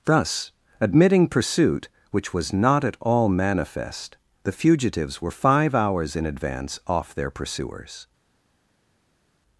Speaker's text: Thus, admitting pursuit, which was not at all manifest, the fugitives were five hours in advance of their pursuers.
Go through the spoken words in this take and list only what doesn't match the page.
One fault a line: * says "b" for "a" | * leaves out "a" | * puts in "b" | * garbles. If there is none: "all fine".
* says "off" for "of"